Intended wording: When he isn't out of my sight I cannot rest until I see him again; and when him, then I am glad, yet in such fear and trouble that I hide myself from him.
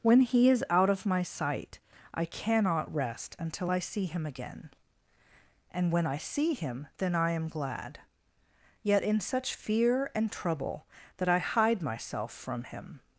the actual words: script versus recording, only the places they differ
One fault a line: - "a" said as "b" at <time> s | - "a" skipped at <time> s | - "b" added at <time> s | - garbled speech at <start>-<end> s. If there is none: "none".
- "isn't" said as "is" at 0.5 s
- "I see" added at 6.1 s